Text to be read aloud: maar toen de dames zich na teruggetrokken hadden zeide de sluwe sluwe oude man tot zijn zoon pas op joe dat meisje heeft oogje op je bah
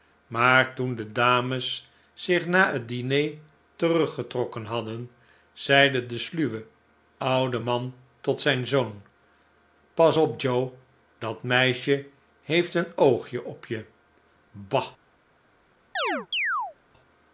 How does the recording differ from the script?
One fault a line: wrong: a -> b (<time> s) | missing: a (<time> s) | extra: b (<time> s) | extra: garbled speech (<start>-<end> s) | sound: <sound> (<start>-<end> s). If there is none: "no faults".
extra: het diner (2.7 s)
missing: sluwe (6.7 s)
extra: een (12.7 s)
sound: chirp (16.0-16.8 s)